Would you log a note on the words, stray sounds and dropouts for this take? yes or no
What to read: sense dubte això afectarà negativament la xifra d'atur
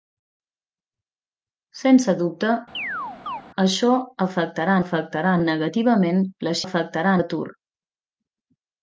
yes